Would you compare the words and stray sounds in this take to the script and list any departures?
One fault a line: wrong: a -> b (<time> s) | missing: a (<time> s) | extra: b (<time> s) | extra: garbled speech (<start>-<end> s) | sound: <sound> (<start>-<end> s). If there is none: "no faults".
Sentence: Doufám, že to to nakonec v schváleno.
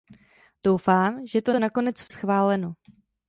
no faults